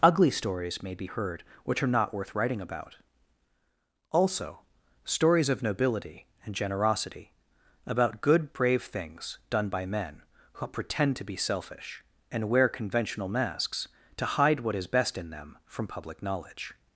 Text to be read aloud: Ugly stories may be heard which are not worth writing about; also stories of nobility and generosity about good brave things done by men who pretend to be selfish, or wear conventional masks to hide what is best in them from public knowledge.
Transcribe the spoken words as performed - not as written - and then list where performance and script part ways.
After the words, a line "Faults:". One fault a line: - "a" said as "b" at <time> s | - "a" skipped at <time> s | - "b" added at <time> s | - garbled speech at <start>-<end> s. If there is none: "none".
Ugly stories may be heard which are not worth writing about; also stories of nobility and generosity about good brave things done by men who pretend to be selfish, and wear conventional masks to hide what is best in them from public knowledge.
Faults:
- "or" said as "and" at 12.3 s